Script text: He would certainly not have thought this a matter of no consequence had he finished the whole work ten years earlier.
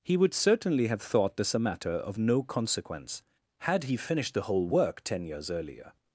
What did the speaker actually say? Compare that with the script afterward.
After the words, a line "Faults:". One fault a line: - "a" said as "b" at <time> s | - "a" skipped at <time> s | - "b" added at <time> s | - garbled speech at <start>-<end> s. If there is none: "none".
He would certainly have thought this a matter of no consequence had he finished the whole work ten years earlier.
Faults:
- "not" skipped at 0.9 s